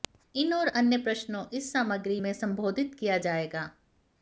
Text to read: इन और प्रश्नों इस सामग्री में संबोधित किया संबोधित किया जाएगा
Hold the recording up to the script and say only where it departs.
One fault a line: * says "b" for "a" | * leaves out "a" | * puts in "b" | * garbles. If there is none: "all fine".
* puts in "अन्य"
* leaves out "संबोधित किया"